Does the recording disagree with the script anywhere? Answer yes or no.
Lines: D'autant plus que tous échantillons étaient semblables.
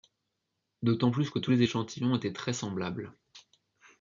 yes